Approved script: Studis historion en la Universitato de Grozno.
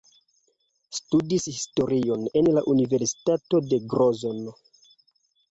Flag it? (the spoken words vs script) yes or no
no